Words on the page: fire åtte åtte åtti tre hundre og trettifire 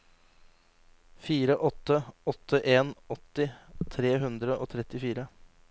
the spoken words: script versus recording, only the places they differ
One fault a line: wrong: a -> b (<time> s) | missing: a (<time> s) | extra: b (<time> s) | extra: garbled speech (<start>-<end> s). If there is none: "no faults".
extra: en (2.6 s)